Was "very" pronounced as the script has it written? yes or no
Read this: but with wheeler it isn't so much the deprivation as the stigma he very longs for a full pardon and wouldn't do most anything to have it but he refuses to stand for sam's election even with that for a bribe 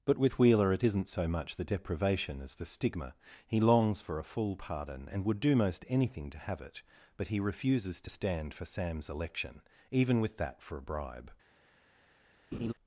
no